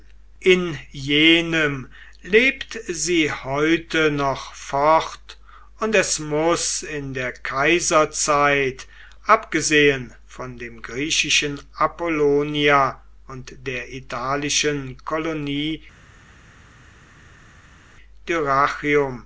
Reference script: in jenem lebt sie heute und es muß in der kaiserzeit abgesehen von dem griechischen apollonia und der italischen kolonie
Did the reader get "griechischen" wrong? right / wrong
right